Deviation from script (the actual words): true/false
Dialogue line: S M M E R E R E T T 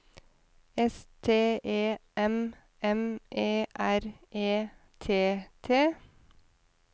true